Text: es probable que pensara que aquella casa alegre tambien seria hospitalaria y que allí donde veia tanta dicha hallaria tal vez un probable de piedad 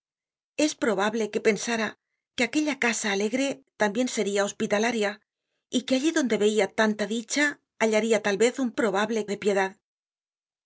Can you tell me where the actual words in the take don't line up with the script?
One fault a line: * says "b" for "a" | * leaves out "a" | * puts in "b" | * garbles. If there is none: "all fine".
all fine